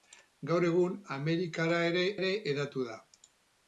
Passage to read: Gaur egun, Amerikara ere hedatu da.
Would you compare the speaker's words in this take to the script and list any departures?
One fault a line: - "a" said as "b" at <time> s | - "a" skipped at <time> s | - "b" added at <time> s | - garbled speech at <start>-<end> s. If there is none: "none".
- "ere" added at 2.2 s